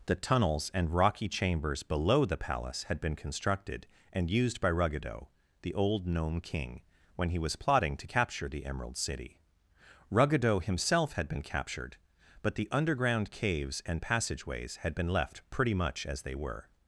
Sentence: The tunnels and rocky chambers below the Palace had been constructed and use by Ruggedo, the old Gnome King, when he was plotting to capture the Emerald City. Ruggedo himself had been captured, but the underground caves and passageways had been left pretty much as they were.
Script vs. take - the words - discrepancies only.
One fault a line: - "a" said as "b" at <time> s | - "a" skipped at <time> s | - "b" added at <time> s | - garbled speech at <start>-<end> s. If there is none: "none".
- "use" said as "used" at 4.3 s